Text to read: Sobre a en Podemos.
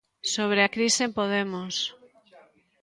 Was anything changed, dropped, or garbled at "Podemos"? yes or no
no